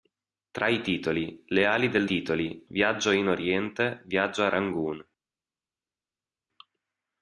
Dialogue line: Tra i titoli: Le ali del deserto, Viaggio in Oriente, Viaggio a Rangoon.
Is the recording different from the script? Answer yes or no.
yes